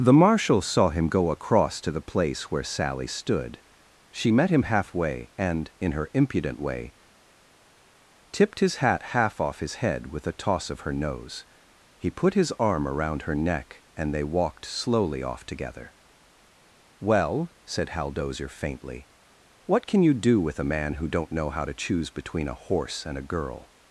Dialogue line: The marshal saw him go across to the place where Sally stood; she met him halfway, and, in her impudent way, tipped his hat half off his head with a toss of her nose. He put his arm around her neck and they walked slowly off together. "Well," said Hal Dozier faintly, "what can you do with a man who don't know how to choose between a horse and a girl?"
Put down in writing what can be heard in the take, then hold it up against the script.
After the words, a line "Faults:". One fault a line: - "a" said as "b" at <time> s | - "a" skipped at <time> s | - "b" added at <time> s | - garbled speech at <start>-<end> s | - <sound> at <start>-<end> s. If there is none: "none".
The marshal saw him go across to the place where Sally stood; she met him halfway, and, in her impudent way, tipped his hat half off his head with a toss of her nose. He put his arm around her neck and they walked slowly off together. "Well," said Hal Dozier faintly, "what can you do with a man who don't know how to choose between a horse and a girl?"
Faults:
none